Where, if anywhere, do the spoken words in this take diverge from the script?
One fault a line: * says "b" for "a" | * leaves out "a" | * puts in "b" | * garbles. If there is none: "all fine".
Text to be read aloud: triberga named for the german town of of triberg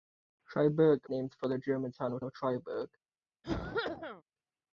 all fine